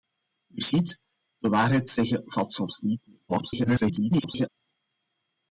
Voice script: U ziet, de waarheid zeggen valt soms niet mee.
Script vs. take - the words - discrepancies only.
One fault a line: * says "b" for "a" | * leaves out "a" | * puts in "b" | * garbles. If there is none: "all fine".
* garbles